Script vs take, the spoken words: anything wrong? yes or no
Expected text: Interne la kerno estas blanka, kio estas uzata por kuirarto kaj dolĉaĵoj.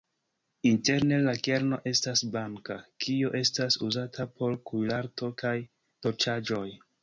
no